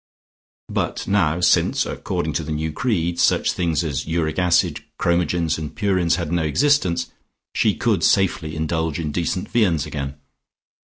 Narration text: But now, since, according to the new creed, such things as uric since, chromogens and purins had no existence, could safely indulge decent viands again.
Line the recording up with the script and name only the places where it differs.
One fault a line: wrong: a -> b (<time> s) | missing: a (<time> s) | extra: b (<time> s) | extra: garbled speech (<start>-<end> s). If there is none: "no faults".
wrong: since -> acid (4.4 s)
extra: she (7.5 s)
extra: in (9.0 s)